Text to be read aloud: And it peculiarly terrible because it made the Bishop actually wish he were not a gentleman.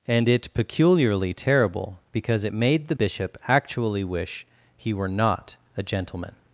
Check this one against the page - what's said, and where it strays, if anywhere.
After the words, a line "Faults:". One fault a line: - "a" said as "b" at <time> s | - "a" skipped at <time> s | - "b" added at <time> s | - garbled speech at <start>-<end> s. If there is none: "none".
And it peculiarly terrible because it made the Bishop actually wish he were not a gentleman.
Faults:
none